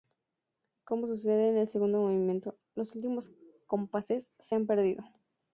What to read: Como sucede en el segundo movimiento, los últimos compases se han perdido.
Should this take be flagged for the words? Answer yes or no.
no